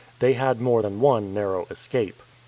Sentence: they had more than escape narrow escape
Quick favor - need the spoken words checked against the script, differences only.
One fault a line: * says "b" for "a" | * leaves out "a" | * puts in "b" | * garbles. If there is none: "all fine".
* says "one" for "escape"